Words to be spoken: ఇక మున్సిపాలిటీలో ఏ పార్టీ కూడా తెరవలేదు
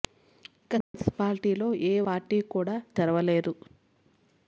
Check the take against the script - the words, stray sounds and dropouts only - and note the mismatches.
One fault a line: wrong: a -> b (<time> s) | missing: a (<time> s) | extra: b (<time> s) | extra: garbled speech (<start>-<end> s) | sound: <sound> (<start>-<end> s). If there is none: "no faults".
sound: dropout (0.8-0.9 s)